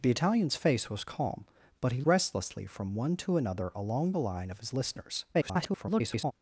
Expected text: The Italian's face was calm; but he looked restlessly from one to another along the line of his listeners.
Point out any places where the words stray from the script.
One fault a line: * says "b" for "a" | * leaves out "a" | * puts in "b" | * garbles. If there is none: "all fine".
* leaves out "looked"
* garbles